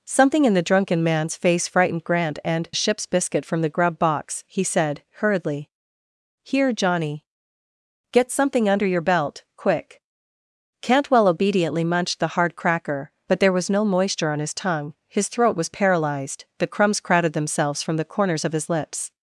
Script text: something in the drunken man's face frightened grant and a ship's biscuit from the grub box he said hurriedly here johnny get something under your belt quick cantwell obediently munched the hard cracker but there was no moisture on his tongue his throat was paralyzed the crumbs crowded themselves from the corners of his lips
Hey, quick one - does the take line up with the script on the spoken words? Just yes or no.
yes